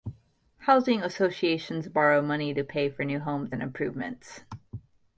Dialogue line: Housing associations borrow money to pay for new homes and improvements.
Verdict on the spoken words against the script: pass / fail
pass